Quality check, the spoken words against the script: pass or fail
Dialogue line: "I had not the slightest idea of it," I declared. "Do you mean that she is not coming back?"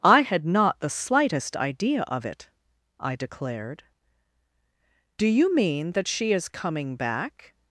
fail